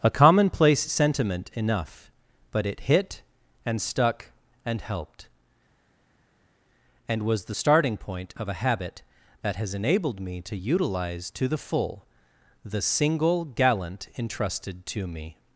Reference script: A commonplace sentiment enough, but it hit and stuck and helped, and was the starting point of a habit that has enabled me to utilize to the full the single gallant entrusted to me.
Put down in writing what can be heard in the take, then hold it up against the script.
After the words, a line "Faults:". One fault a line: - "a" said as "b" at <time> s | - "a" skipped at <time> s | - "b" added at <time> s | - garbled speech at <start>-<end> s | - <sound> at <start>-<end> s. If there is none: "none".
A commonplace sentiment enough, but it hit and stuck and helped, and was the starting point of a habit that has enabled me to utilize to the full the single gallant entrusted to me.
Faults:
none